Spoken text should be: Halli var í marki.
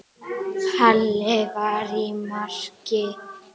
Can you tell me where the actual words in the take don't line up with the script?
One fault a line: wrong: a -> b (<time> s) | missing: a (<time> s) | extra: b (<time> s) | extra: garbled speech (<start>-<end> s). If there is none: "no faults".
no faults